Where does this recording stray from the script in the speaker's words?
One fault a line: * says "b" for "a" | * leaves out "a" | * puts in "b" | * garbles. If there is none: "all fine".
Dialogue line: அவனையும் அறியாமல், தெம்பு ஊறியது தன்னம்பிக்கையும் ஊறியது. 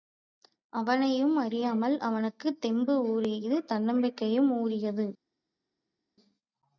* puts in "அவனுக்குத்"